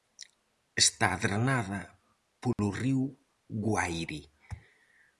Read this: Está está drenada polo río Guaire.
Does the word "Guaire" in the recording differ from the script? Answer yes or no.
no